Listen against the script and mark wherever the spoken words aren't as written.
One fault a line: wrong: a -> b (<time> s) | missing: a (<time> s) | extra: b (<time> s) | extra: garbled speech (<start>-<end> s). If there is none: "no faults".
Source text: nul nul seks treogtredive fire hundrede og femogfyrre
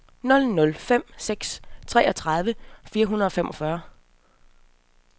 extra: fem (0.7 s)